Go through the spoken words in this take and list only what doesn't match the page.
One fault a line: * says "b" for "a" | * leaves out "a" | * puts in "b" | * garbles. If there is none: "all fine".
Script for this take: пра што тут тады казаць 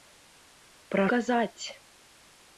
* leaves out "што тут тады"